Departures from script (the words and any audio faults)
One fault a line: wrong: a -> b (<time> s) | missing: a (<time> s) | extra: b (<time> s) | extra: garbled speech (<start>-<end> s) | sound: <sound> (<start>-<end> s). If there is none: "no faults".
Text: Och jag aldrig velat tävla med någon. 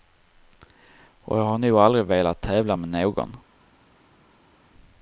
extra: har nog (1.4 s)